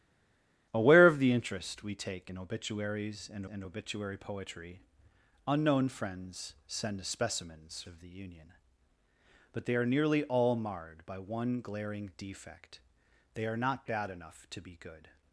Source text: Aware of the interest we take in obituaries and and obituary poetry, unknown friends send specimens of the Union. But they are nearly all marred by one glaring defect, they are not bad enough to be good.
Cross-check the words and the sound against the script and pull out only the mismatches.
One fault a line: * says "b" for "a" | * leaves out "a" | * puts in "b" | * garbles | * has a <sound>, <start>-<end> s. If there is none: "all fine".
all fine